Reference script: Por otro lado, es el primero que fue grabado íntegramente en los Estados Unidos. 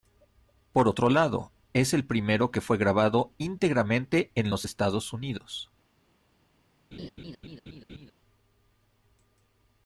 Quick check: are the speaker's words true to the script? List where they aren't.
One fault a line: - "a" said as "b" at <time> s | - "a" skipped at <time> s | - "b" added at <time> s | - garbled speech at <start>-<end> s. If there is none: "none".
none